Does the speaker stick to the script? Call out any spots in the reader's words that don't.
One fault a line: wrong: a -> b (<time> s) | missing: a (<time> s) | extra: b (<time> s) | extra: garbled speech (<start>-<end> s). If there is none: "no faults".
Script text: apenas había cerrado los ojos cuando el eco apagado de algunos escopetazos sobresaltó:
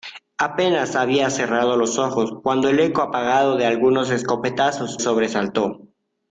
no faults